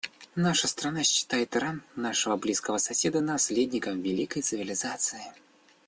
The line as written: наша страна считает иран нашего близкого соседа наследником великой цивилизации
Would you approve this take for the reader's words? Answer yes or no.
yes